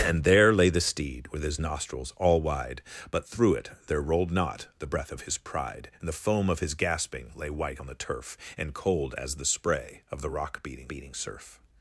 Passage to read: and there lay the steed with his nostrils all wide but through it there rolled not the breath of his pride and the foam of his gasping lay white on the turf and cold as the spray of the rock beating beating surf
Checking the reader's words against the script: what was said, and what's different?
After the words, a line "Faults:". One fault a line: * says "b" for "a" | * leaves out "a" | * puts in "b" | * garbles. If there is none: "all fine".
and there lay the steed with his nostrils all wide but through it there rolled not the breath of his pride and the foam of his gasping lay white on the turf and cold as the spray of the rock beating beating surf
Faults:
all fine